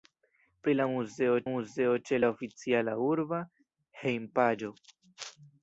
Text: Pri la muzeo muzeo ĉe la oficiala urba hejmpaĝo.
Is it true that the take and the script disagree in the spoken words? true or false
false